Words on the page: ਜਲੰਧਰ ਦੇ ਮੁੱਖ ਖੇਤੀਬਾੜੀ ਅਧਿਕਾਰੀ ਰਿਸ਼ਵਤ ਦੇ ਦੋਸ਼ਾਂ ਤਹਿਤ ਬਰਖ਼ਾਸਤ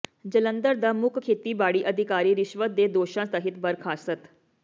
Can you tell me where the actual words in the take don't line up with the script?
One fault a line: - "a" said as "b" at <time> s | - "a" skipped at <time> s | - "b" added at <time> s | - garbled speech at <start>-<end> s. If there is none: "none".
- "ਦੇ" said as "ਦਾ" at 0.8 s